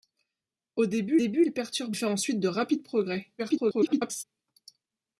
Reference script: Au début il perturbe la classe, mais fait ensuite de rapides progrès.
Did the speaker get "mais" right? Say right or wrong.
wrong